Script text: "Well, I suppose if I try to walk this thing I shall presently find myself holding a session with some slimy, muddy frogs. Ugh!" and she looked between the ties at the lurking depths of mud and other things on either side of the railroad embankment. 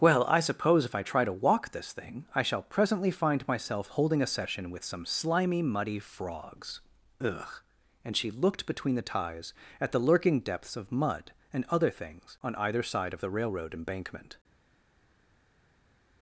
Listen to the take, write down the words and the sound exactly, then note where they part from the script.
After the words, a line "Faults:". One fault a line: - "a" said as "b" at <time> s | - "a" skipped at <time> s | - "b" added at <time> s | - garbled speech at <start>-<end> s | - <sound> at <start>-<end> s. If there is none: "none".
"Well, I suppose if I try to walk this thing I shall presently find myself holding a session with some slimy, muddy frogs. Ugh!" and she looked between the ties at the lurking depths of mud and other things on either side of the railroad embankment.
Faults:
none